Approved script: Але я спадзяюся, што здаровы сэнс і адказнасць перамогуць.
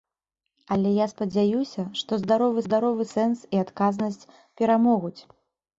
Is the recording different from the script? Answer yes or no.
yes